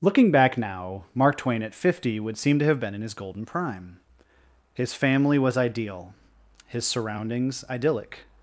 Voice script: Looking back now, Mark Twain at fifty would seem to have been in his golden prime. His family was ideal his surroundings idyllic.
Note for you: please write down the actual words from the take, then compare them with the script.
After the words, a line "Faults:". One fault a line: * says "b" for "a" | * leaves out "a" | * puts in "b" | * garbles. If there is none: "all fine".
Looking back now, Mark Twain at fifty would seem to have been in his golden prime. His family was ideal his surroundings idyllic.
Faults:
all fine